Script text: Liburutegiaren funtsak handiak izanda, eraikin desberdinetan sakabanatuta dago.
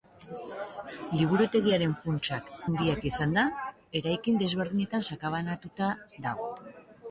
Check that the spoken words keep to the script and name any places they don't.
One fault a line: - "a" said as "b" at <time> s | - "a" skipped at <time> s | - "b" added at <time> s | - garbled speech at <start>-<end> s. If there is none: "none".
none